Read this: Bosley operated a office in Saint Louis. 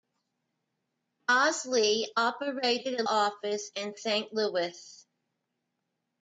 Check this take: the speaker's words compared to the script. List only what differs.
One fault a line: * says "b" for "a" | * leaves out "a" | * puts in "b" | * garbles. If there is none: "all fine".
all fine